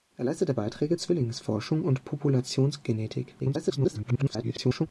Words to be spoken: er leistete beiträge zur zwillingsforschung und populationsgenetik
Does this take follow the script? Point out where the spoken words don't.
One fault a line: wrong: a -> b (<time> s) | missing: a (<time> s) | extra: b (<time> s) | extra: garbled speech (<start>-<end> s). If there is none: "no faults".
missing: zur (1.0 s)
extra: garbled speech (3.4-4.9 s)